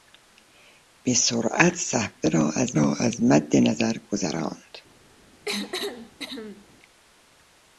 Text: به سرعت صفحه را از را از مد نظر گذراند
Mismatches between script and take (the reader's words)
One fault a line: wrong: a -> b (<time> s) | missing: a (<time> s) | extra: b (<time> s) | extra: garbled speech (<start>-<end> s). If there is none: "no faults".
no faults